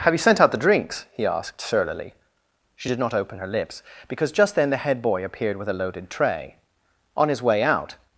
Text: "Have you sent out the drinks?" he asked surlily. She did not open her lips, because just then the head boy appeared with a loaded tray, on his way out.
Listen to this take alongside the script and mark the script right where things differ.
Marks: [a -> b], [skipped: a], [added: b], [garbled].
"Have you sent out the drinks?" he asked surlily. She did not open her lips, because just then the head boy appeared with a loaded tray, on his way out.